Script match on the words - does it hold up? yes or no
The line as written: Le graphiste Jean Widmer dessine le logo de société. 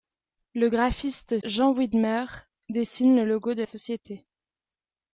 yes